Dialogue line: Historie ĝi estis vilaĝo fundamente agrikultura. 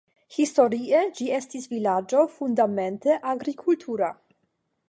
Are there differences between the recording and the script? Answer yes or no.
no